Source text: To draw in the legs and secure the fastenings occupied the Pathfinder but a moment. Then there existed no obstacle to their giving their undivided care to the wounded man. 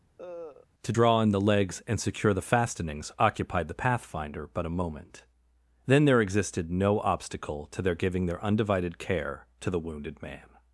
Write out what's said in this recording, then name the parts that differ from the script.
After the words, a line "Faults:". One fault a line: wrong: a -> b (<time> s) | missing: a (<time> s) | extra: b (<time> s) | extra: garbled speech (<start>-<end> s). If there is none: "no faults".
To draw in the legs and secure the fastenings occupied the Pathfinder but a moment. Then there existed no obstacle to their giving their undivided care to the wounded man.
Faults:
no faults